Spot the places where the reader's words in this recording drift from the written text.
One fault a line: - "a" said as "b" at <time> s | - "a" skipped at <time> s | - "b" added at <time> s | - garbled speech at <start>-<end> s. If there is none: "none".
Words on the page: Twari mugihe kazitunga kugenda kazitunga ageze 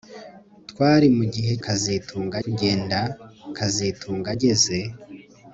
none